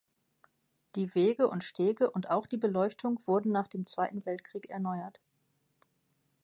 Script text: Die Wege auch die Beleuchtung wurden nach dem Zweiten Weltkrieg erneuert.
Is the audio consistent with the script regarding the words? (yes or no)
no